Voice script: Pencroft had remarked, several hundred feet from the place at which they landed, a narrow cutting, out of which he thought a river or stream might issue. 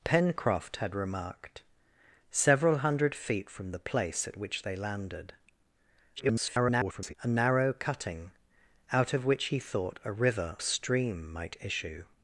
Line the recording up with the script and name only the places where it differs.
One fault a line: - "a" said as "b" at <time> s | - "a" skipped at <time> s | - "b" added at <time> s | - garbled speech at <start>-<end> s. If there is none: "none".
- garbled speech at 6.2-7.1 s
- "or" skipped at 10.6 s